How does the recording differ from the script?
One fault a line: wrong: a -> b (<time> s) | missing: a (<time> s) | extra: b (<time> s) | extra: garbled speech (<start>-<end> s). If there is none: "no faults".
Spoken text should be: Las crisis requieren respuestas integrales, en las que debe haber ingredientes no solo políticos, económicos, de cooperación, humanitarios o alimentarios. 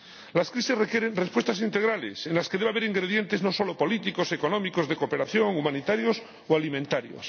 no faults